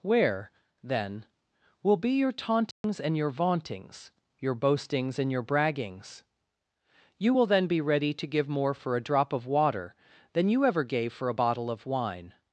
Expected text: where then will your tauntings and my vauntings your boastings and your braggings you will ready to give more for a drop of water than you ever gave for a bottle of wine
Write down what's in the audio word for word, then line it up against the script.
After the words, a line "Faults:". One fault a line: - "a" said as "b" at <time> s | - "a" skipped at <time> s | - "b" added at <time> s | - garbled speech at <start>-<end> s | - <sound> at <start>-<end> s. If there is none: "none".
where then will be your tauntings and your vauntings your boastings and your braggings you will then be ready to give more for a drop of water than you ever gave for a bottle of wine
Faults:
- "be" added at 2.0 s
- dropout at 2.7-2.8 s
- "my" said as "your" at 3.1 s
- "then be" added at 7.5 s